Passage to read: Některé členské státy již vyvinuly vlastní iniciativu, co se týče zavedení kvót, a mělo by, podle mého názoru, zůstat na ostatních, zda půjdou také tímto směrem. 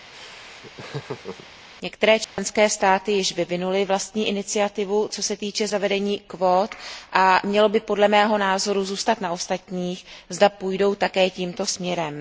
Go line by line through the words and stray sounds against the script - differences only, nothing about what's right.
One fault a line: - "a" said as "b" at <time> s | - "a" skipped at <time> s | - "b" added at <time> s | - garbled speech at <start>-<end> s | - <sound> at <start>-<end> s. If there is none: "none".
- laugh at 0.1-1.5 s
- dropout at 2.2-2.4 s